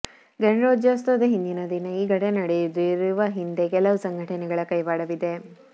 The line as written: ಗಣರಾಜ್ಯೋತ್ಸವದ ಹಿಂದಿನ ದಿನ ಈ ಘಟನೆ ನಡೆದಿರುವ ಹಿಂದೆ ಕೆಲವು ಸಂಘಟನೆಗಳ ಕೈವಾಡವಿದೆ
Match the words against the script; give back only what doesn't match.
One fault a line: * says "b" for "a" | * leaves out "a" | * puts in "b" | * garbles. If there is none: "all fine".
all fine